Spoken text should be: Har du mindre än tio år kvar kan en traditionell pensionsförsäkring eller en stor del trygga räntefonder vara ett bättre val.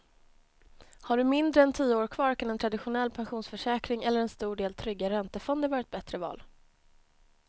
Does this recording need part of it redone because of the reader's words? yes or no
no